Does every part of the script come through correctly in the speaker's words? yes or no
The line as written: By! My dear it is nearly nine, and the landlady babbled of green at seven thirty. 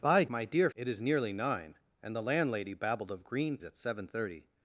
yes